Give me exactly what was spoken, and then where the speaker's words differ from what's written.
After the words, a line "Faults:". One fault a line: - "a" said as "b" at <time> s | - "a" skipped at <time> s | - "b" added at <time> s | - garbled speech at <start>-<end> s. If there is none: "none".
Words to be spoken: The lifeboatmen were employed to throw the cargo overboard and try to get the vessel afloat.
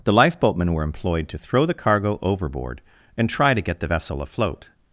The lifeboatmen were employed to throw the cargo overboard and try to get the vessel afloat.
Faults:
none